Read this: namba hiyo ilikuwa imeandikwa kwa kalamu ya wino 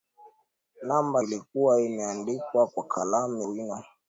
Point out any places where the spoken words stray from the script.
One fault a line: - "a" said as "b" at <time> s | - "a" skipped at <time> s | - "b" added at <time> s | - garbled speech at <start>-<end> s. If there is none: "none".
- "hiyo" skipped at 1.2 s
- "ya" skipped at 3.4 s